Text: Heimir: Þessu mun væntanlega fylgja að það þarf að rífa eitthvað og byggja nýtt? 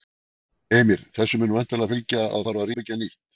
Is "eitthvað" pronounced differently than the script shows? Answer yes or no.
yes